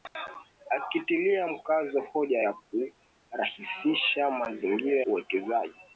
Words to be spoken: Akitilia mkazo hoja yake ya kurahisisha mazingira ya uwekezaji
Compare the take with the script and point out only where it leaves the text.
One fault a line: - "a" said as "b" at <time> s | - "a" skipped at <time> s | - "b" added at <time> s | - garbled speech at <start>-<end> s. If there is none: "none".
- "yake" skipped at 2.4 s
- "ya" skipped at 5.0 s